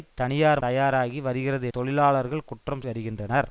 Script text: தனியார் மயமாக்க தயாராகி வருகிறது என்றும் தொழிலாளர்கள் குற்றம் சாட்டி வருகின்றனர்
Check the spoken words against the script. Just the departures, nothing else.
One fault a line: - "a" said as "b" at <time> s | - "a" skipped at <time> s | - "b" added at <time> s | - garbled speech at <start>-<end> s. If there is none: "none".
- "மயமாக்க" skipped at 0.6 s
- "என்றும்" skipped at 1.7 s
- "சாட்டி" skipped at 2.8 s